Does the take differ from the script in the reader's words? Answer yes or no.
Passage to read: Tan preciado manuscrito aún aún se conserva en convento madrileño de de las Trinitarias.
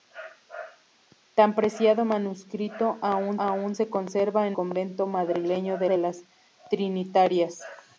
no